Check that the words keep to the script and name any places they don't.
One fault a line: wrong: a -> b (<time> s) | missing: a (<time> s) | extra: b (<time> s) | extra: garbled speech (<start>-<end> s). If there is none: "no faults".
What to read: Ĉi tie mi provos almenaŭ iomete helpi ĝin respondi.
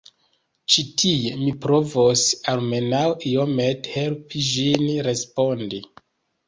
no faults